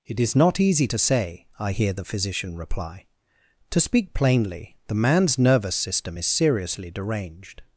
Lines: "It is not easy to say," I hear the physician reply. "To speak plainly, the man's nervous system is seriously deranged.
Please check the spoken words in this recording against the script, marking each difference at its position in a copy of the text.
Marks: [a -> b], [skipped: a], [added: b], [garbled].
"It is not easy to say," I hear the physician reply. "To speak plainly, the man's nervous system is seriously deranged.